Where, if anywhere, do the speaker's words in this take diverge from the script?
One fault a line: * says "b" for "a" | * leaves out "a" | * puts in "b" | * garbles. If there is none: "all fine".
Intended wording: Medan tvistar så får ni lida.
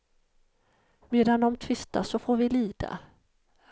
* puts in "de"
* says "vi" for "ni"